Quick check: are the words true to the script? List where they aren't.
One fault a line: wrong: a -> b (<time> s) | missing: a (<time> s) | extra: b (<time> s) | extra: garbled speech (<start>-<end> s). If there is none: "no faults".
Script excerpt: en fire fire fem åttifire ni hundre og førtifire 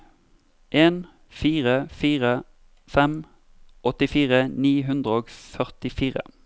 no faults